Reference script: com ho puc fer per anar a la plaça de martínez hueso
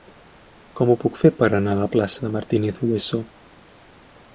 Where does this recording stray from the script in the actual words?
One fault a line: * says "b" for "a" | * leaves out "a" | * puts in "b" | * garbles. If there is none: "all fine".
all fine